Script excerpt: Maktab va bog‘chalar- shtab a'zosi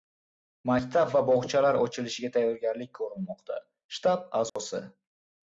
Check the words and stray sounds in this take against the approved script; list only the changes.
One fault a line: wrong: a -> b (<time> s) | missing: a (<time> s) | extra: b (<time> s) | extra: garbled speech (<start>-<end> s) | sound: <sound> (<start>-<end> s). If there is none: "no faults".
extra: ochilishiga tayyorgarlik ko‘rilmoqda (1.8 s)
sound: dropout (4.5-4.6 s)